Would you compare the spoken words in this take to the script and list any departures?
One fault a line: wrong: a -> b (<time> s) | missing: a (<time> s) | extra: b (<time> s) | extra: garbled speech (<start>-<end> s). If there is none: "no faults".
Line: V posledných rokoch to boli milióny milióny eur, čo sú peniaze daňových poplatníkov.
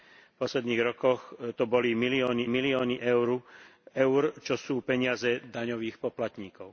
no faults